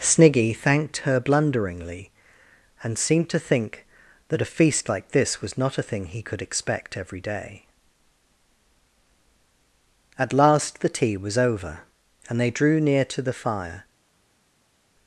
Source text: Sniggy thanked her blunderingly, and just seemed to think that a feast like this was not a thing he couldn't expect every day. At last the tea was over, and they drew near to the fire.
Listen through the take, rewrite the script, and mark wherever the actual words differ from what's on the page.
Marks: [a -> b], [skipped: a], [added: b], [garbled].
Sniggy thanked her blunderingly, and [skipped: just] seemed to think that a feast like this was not a thing he [couldn't -> could] expect every day. At last the tea was over, and they drew near to the fire.